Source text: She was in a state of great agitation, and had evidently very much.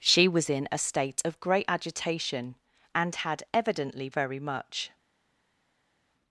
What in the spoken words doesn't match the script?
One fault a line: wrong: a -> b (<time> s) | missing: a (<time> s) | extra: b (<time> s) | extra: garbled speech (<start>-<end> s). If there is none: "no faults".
no faults